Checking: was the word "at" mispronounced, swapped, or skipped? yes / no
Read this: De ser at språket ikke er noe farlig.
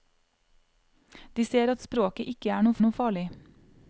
no